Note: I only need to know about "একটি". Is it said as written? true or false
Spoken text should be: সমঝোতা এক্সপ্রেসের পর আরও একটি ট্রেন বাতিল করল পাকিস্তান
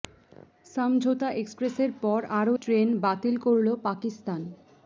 false